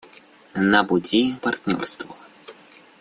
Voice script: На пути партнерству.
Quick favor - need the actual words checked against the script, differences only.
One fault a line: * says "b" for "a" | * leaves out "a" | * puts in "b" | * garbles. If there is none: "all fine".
all fine